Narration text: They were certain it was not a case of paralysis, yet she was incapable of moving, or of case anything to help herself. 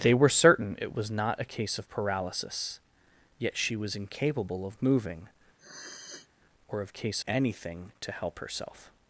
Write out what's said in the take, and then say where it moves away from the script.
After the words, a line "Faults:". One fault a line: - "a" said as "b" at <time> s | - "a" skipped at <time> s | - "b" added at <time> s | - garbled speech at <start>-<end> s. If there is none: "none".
They were certain it was not a case of paralysis, yet she was incapable of moving, or of case anything to help herself.
Faults:
none